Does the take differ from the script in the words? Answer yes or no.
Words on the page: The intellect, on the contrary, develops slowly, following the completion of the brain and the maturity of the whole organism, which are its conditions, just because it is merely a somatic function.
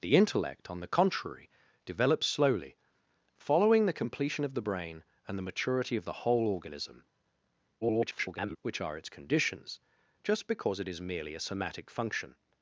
yes